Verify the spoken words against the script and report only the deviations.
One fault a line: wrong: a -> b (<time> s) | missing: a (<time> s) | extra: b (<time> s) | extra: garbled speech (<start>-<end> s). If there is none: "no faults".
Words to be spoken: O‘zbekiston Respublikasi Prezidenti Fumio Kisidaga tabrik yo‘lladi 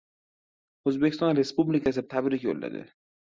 missing: Prezidenti Fumio Kisidaga (2.0 s)